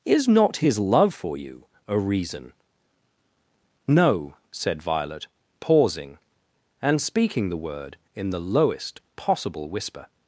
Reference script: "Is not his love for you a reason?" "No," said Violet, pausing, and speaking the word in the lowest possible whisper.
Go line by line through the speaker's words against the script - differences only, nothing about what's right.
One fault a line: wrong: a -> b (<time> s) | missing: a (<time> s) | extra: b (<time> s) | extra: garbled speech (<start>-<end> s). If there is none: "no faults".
no faults